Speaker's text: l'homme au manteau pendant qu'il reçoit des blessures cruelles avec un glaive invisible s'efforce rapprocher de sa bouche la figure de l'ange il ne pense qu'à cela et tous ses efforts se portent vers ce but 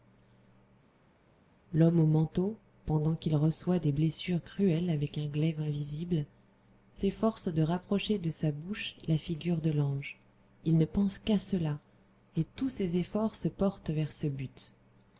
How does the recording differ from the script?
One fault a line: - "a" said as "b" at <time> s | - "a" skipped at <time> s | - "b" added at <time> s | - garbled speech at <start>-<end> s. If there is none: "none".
- "de" added at 7.5 s